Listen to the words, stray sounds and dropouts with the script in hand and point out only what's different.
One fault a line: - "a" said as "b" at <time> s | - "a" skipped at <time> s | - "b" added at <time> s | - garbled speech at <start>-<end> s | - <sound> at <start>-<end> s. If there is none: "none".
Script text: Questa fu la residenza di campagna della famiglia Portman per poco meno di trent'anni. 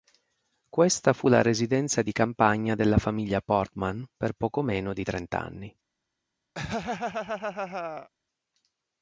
- laugh at 6.5-8.1 s